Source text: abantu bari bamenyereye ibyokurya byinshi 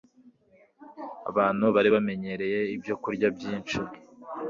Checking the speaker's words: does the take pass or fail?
pass